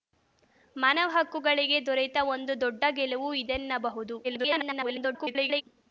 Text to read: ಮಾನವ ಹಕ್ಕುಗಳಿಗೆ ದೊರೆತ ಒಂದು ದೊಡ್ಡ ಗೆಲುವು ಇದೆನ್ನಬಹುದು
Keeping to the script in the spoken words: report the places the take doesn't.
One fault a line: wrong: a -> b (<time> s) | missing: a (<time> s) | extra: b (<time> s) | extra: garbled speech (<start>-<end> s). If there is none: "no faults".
extra: garbled speech (4.2-5.6 s)